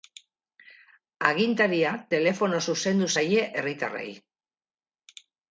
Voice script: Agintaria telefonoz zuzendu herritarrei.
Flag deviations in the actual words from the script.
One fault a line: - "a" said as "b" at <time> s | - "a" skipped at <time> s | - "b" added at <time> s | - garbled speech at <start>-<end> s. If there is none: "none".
- "zaie" added at 3.2 s